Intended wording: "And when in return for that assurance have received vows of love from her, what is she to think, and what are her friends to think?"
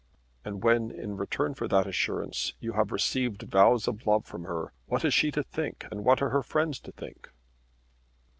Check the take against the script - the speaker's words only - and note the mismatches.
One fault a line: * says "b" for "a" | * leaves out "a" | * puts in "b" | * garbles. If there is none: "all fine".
* puts in "you"